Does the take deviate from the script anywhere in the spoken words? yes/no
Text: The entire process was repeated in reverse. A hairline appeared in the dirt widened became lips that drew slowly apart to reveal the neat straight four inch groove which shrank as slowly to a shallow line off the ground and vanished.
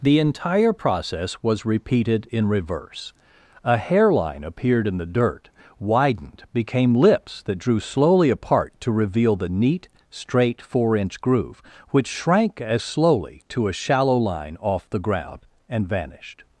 no